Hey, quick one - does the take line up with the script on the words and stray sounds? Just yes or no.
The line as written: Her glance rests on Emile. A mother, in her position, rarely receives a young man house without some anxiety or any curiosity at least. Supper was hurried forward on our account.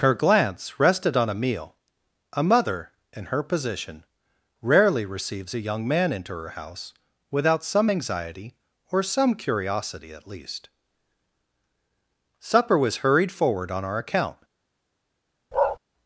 no